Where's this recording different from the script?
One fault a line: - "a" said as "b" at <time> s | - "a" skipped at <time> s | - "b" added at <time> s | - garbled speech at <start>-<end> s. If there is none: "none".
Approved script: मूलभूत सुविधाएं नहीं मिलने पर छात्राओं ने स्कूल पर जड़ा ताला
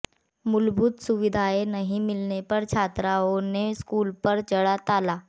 none